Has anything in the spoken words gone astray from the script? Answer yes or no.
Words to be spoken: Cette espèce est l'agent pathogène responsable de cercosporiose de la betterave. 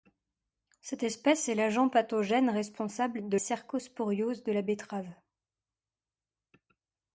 no